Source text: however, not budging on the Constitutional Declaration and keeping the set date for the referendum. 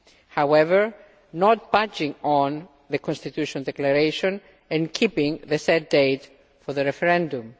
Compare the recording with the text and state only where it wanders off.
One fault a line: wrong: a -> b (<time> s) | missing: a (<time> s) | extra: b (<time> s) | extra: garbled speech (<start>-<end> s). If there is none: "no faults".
no faults